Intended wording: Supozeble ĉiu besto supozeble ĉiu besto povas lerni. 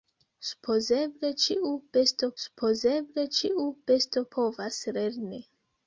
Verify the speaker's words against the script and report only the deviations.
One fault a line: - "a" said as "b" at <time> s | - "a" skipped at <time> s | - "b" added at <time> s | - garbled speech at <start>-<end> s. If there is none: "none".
none